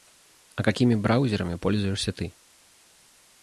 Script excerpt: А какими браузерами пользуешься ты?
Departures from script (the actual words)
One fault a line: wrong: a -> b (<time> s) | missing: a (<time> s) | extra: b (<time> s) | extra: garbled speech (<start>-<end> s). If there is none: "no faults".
no faults